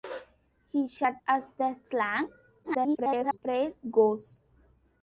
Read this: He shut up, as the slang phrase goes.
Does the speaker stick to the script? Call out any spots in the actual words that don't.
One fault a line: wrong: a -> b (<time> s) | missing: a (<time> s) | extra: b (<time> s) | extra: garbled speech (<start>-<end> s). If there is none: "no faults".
missing: up (1.2 s)
extra: garbled speech (2.6-3.4 s)